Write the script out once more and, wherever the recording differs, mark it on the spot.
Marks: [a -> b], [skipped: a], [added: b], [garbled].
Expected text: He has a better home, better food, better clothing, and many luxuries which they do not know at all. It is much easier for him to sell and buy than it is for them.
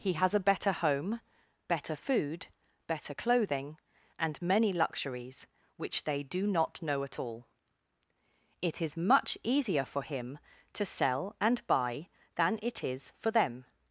He has a better home, better food, better clothing, and many luxuries which they do not know at all. It is much easier for him to sell and buy than it is for them.